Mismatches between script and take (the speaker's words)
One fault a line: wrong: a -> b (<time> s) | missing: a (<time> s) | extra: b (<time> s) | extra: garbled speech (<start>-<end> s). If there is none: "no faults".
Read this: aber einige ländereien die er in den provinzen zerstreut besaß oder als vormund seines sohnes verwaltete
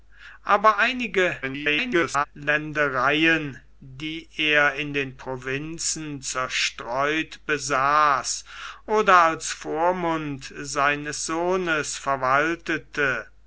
extra: garbled speech (1.4-2.3 s)